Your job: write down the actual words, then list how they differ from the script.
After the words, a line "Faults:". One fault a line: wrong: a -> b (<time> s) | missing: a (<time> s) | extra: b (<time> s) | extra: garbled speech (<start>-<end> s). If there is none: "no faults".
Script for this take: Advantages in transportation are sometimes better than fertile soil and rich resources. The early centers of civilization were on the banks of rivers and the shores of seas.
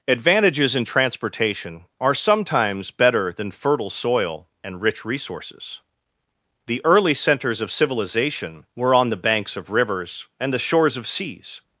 Advantages in transportation are sometimes better than fertile soil and rich resources. The early centers of civilization were on the banks of rivers and the shores of seas.
Faults:
no faults